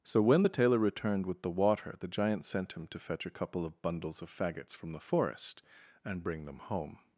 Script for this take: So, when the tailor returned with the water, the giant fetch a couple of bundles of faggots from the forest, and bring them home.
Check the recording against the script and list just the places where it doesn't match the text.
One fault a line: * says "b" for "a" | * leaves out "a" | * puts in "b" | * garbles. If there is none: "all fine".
* puts in "sent him to"